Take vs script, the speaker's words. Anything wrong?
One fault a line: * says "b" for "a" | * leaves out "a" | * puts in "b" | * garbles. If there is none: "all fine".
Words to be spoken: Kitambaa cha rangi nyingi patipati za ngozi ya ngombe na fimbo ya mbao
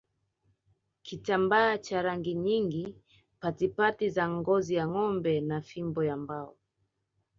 all fine